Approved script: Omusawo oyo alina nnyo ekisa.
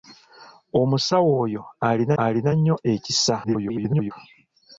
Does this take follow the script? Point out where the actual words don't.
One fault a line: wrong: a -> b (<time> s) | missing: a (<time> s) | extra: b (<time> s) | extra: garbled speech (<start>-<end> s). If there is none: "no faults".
extra: alina (2.2 s)
extra: garbled speech (3.4-4.1 s)